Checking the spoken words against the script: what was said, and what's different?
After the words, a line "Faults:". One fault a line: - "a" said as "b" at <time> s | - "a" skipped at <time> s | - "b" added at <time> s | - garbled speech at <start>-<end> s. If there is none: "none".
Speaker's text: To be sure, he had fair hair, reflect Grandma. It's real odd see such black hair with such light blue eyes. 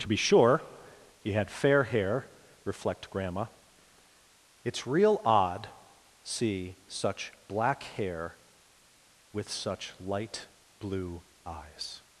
To be sure, he had fair hair, reflect Grandma. It's real odd see such black hair with such light blue eyes.
Faults:
none